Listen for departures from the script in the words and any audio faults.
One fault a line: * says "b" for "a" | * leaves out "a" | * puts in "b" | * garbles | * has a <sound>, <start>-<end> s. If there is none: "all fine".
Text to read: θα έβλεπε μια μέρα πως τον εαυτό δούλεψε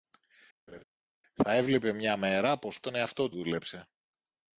* has a laugh, 0.7-0.8 s